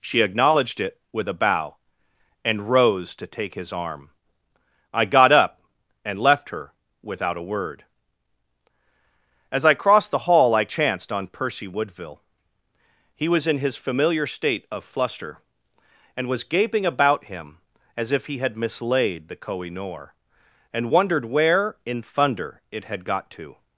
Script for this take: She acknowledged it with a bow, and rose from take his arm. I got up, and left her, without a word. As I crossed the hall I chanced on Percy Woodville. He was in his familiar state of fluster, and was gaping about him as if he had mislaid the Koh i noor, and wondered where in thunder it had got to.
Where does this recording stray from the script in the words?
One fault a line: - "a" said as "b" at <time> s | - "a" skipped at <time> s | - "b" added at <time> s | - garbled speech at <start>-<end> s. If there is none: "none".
- "from" said as "to" at 3.2 s